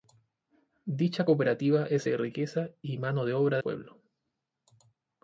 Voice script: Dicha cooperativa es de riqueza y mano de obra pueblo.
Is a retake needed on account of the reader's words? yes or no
no